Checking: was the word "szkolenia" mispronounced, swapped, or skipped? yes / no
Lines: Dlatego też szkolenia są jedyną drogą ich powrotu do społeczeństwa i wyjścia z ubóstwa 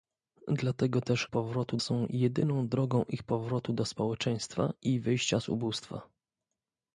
yes